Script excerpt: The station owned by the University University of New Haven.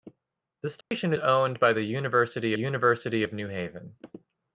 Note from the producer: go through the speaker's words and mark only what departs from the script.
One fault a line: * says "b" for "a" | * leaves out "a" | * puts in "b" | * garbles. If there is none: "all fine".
all fine